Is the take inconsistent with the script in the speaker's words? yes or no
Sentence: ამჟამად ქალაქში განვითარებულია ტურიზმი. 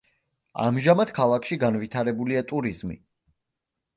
no